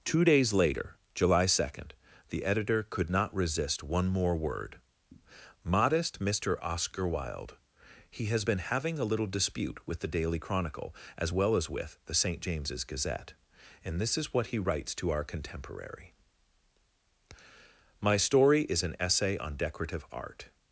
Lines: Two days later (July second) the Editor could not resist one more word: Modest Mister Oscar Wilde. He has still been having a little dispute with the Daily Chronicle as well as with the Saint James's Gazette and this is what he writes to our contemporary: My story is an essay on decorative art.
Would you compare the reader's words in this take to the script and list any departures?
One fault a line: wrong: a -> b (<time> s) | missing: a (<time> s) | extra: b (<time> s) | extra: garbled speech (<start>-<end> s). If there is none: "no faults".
missing: still (8.4 s)